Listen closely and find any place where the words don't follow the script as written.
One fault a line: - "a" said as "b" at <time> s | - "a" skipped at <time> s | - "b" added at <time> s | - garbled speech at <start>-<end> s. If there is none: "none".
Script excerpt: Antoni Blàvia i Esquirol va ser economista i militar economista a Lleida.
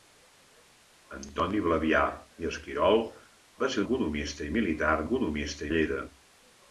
none